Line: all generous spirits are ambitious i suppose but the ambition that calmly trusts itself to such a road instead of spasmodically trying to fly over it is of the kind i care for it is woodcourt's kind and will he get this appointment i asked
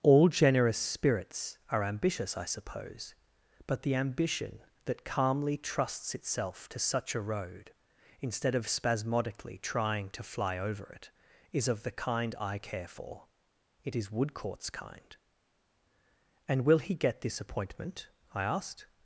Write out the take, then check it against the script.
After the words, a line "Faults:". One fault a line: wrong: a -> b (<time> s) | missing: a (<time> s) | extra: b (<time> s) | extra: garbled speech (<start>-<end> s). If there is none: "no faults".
all generous spirits are ambitious i suppose but the ambition that calmly trusts itself to such a road instead of spasmodically trying to fly over it is of the kind i care for it is woodcourt's kind and will he get this appointment i asked
Faults:
no faults